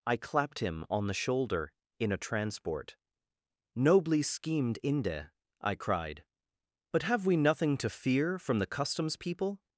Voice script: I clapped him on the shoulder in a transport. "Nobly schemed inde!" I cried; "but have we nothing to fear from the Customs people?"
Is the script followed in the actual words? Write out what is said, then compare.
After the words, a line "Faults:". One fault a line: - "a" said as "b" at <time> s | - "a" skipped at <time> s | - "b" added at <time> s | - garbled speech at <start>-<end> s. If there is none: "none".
I clapped him on the shoulder in a transport. "Nobly schemed inde!" I cried; "but have we nothing to fear from the Customs people?"
Faults:
none